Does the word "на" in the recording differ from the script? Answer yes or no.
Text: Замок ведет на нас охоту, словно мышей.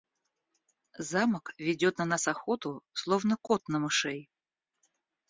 no